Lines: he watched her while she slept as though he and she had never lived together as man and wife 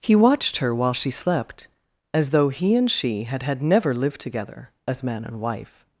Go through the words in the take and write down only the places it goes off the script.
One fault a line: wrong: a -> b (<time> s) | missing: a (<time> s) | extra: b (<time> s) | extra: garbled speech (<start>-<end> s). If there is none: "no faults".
extra: had (3.4 s)